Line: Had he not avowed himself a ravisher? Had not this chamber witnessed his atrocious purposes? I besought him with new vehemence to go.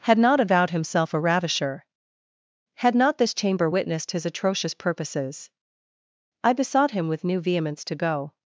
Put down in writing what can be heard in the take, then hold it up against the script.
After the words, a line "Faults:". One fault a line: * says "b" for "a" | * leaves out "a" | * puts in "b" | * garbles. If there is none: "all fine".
Had not avowed himself a ravisher? Had not this chamber witnessed his atrocious purposes? I besought him with new vehemence to go.
Faults:
* leaves out "he"